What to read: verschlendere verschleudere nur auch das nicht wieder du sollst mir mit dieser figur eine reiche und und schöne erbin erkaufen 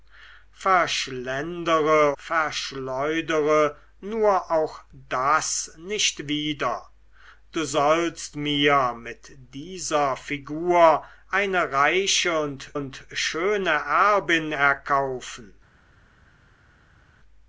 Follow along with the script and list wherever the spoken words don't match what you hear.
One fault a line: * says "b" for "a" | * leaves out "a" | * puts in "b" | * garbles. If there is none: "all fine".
all fine